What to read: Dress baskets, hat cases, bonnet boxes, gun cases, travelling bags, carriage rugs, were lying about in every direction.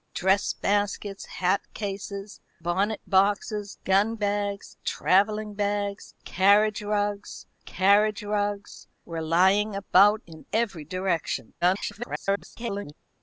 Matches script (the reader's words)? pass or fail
fail